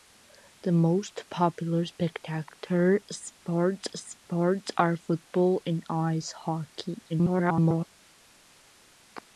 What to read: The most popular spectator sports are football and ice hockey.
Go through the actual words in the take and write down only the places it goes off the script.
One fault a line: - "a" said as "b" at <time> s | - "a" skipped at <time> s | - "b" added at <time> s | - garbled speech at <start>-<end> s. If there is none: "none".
- "sports" added at 3.9 s
- garbled speech at 7.1-7.9 s